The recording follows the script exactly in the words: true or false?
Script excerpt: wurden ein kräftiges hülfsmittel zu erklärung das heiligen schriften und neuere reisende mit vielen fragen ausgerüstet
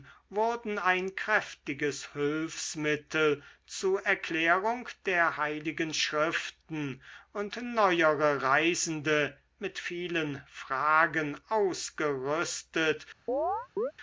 false